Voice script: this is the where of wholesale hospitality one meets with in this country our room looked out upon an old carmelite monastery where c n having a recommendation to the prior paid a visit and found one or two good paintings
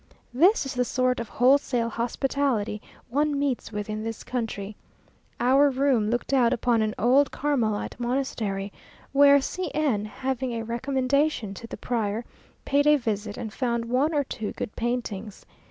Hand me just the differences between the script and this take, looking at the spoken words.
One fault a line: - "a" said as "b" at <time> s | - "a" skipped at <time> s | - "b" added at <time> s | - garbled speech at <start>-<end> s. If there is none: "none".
- "where" said as "sort" at 0.8 s